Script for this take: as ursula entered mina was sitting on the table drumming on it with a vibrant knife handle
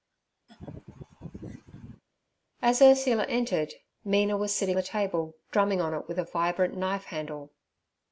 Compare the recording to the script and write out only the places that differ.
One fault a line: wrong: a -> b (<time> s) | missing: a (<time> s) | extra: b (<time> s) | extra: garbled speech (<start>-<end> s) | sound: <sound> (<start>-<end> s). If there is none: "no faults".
sound: laugh (0.5-2.0 s)
missing: on (4.8 s)